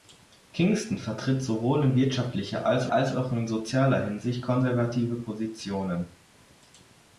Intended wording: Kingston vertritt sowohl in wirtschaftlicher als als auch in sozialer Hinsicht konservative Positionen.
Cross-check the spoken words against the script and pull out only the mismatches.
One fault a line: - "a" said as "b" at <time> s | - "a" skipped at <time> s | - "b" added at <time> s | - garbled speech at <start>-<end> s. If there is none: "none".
none